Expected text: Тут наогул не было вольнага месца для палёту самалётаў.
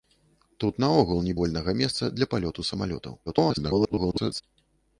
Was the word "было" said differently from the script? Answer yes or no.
yes